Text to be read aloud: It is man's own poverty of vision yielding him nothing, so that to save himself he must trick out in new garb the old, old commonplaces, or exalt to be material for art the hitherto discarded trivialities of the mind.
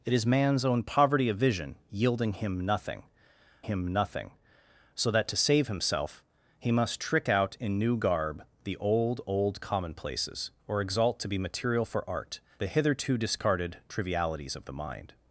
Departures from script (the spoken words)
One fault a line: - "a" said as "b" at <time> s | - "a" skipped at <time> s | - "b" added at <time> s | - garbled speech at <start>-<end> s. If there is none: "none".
- "him nothing" added at 3.6 s